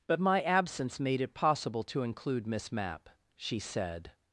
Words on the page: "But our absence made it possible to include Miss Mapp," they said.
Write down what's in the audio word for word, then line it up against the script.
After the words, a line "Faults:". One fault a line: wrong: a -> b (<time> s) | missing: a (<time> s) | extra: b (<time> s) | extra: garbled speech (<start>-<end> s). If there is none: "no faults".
"But my absence made it possible to include Miss Mapp," she said.
Faults:
wrong: our -> my (0.2 s)
wrong: they -> she (3.3 s)